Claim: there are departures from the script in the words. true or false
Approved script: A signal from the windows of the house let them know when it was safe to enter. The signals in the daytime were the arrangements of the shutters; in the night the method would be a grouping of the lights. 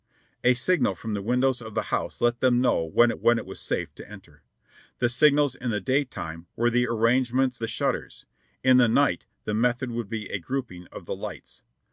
true